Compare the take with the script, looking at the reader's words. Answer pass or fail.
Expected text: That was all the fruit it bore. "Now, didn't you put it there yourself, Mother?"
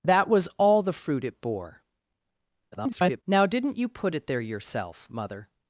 fail